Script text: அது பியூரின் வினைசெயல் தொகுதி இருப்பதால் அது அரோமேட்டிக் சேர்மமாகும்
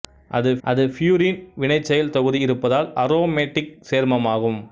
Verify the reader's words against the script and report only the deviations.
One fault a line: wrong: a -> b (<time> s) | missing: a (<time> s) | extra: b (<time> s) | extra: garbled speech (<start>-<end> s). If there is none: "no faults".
extra: அது (0.6 s)
missing: அது (2.9 s)